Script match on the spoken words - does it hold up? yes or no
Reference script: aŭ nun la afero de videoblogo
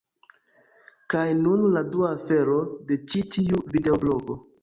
no